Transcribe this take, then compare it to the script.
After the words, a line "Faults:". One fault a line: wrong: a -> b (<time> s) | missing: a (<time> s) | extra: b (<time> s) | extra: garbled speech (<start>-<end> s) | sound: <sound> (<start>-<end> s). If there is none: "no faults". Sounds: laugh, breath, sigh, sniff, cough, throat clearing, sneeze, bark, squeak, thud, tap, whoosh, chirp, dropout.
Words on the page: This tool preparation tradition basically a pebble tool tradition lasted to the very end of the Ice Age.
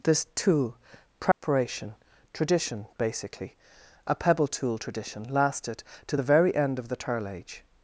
This tool preparation tradition basically a pebble tool tradition lasted to the very end of the Turl Age.
Faults:
sound: dropout (1.3-1.4 s)
wrong: Ice -> Turl (7.0 s)